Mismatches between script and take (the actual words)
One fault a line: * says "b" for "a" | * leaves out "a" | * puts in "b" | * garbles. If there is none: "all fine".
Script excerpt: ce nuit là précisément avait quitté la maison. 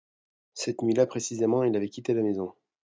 * says "cette" for "ce"
* puts in "il"